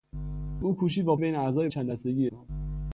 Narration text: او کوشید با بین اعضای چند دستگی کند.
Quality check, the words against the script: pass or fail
pass